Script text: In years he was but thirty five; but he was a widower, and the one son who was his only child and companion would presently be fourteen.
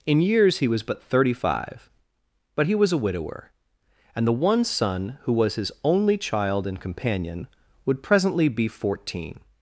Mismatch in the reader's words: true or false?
false